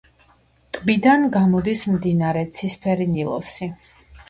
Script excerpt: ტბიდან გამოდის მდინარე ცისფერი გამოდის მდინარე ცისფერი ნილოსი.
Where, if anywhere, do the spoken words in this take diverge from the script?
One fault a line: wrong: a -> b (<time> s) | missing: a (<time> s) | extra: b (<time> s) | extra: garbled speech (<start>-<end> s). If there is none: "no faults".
missing: გამოდის მდინარე ცისფერი (3.1 s)